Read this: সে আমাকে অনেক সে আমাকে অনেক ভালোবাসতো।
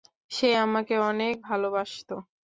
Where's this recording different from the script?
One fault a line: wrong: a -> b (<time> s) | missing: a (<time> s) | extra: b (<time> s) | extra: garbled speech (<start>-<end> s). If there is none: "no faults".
missing: সে আমাকে অনেক (1.3 s)